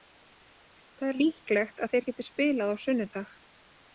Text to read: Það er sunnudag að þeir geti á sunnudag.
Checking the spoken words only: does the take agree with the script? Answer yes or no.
no